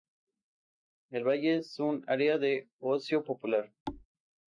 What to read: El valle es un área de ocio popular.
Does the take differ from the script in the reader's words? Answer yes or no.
no